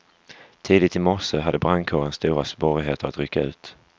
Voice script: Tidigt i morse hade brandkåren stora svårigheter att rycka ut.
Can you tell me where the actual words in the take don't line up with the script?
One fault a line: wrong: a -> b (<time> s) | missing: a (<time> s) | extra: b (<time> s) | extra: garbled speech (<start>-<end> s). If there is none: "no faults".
no faults